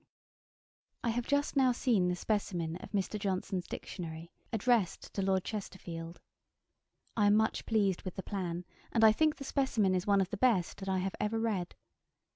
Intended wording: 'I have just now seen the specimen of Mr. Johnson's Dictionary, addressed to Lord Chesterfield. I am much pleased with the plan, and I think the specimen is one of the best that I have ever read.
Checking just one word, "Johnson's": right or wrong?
right